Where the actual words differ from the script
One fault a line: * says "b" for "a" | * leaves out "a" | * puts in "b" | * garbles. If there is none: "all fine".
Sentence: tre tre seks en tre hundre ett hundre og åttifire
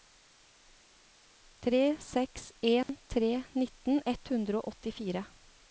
* leaves out "tre"
* says "nitten" for "hundre"